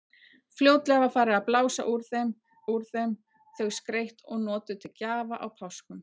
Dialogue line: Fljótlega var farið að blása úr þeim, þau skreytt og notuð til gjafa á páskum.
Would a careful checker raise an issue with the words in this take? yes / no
yes